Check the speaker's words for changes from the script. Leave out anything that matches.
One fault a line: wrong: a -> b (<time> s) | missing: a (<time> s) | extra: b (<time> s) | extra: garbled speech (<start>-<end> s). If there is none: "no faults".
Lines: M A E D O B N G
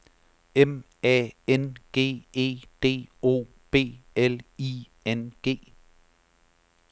extra: N G (1.5 s)
extra: L I (4.1 s)